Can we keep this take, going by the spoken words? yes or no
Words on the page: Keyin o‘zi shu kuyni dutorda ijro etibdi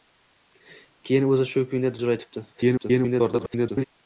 no